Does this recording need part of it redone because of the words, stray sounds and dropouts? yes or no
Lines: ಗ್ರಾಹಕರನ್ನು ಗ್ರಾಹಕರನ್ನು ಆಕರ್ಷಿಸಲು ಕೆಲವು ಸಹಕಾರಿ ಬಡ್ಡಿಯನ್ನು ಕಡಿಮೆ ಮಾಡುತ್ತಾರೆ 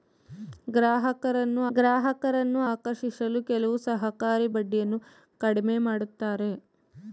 no